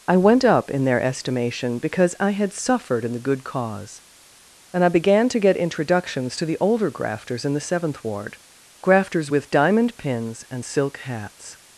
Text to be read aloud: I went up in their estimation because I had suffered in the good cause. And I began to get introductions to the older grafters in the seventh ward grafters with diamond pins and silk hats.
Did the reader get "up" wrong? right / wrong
right